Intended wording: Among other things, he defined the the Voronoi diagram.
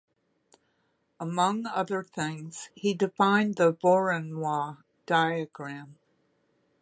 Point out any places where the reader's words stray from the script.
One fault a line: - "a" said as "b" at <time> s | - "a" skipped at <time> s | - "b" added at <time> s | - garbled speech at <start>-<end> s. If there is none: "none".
- "the" skipped at 3.7 s